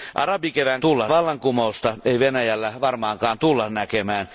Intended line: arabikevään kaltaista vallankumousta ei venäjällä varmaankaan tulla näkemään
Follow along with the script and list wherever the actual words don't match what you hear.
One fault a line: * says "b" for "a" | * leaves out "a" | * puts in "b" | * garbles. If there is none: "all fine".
* says "tulla" for "kaltaista"